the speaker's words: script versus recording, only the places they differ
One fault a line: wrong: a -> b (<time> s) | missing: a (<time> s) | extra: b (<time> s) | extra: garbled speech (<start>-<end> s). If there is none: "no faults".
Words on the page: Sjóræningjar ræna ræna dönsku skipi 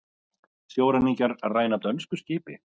missing: ræna (1.8 s)